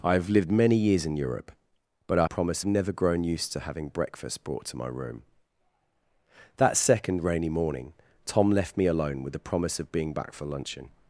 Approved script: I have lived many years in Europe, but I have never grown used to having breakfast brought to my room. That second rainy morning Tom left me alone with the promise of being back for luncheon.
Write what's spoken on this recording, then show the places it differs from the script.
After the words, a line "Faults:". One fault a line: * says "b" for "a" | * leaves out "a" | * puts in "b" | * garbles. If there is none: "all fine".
I have lived many years in Europe, but I promise never grown used to having breakfast brought to my room. That second rainy morning Tom left me alone with the promise of being back for luncheon.
Faults:
* says "promise" for "have"